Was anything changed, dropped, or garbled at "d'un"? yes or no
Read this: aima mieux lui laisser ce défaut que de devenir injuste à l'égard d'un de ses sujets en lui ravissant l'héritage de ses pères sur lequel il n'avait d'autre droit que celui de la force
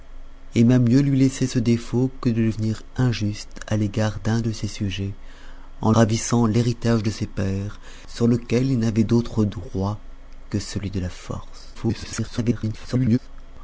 no